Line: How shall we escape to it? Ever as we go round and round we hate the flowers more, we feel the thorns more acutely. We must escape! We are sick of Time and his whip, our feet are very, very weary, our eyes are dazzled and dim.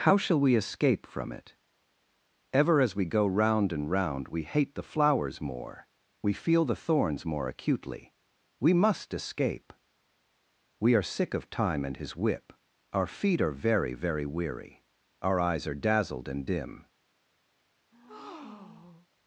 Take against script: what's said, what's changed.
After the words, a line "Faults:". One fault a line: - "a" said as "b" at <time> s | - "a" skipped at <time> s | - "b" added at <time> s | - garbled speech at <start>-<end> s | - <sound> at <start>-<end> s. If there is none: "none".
How shall we escape from it? Ever as we go round and round we hate the flowers more, we feel the thorns more acutely. We must escape! We are sick of Time and his whip, our feet are very, very weary, our eyes are dazzled and dim.
Faults:
- "to" said as "from" at 1.1 s
- breath at 17.9-19.1 s